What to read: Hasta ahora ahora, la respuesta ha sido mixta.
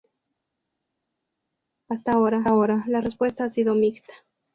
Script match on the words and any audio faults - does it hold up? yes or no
yes